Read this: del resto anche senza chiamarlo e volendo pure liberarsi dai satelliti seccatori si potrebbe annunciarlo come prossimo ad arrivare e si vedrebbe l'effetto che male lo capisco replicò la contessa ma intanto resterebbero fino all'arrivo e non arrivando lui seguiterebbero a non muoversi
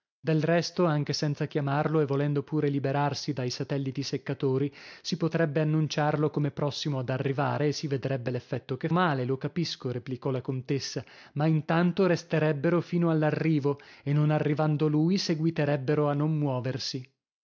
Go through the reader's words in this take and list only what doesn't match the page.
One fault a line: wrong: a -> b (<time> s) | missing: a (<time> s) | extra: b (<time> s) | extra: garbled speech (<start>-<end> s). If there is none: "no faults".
no faults